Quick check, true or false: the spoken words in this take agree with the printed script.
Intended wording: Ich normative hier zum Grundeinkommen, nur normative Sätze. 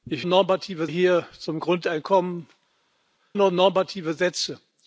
true